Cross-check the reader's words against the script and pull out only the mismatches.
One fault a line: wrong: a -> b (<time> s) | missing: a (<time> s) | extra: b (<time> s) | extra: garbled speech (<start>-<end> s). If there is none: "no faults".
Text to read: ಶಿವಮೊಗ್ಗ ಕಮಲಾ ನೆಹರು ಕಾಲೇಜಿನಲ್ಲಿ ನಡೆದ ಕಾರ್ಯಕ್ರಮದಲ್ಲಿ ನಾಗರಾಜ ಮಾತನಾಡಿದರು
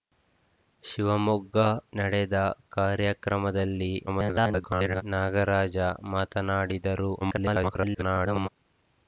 missing: ಕಮಲಾ ನೆಹರು ಕಾಲೇಜಿನಲ್ಲಿ (1.6 s)
extra: garbled speech (4.1-5.0 s)
extra: garbled speech (7.2-8.5 s)